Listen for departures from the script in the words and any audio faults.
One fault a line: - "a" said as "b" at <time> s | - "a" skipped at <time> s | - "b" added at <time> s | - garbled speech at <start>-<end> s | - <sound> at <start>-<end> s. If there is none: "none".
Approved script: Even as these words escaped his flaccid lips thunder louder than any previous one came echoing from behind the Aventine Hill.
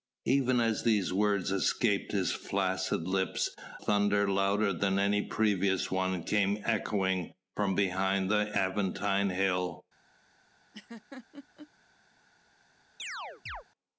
- laugh at 10.7-11.7 s
- chirp at 13.0-13.6 s